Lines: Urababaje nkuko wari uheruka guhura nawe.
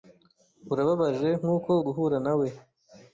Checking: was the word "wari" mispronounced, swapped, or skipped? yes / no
yes